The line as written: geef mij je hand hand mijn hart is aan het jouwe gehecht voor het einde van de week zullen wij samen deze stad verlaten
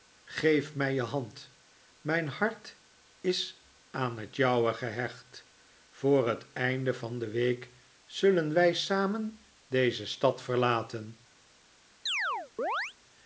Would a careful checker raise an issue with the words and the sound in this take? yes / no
yes